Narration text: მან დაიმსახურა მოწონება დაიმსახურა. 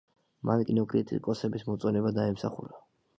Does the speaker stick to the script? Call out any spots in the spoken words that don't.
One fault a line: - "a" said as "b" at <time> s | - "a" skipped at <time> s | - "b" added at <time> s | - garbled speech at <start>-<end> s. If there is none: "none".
- "დაიმსახურა" said as "კინოკრიტიკოსების" at 0.7 s